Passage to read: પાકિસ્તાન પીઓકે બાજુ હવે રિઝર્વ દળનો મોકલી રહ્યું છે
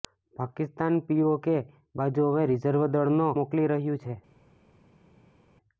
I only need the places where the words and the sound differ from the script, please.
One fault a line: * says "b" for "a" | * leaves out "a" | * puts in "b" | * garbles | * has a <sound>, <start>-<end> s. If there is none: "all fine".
all fine